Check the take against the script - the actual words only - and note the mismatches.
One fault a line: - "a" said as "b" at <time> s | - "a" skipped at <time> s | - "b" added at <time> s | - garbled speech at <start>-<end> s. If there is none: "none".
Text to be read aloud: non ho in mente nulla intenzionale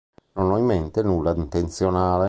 none